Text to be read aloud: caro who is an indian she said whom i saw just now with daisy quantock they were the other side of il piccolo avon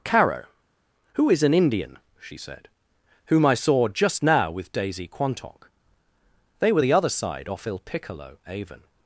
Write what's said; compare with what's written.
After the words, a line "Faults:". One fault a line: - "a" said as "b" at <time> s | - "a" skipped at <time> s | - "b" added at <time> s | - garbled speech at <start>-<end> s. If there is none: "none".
caro who is an indian she said whom i saw just now with daisy quantock they were the other side off il piccolo avon
Faults:
- "of" said as "off" at 7.5 s